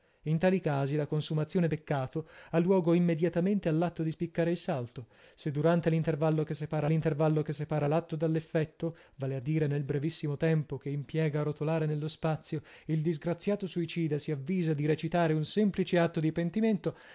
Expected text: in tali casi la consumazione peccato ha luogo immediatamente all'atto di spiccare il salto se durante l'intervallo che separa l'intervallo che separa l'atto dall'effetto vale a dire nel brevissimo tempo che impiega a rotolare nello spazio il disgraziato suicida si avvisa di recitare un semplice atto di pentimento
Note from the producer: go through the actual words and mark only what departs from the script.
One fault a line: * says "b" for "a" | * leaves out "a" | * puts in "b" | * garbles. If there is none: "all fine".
all fine